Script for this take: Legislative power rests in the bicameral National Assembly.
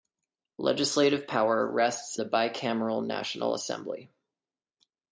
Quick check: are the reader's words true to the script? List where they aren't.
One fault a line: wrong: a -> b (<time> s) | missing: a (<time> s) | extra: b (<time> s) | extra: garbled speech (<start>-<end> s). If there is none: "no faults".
missing: in (2.2 s)